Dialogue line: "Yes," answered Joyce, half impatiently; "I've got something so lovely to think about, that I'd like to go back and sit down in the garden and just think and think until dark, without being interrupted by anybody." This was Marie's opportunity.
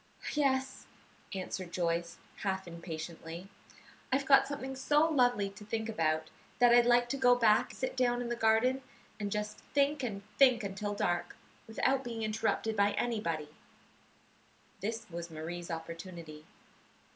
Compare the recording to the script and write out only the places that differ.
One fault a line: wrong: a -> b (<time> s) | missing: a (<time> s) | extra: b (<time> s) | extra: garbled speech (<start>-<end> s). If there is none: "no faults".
missing: and (7.7 s)